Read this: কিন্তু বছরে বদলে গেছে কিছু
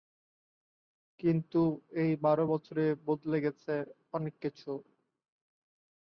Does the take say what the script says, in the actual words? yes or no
no